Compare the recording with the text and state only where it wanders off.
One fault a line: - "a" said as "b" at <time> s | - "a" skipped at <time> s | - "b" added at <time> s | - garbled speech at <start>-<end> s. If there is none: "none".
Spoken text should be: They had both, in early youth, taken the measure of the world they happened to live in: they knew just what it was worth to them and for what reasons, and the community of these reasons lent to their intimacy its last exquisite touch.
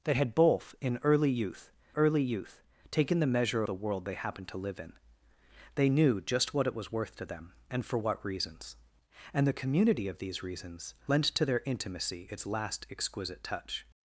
- "early youth" added at 2.0 s
- "of" skipped at 3.6 s